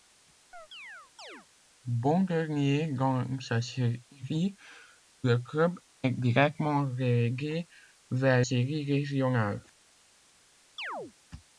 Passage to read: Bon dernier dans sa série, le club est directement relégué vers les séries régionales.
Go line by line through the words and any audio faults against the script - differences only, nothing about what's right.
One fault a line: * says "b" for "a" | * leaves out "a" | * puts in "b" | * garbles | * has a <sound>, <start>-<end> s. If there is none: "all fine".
* has a chirp, 0.5-1.5 s
* leaves out "les"
* has a chirp, 10.8-11.1 s